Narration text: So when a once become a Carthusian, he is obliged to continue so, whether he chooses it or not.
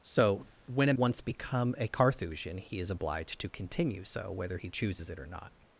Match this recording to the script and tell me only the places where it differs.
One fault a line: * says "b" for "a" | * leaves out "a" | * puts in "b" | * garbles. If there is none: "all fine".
all fine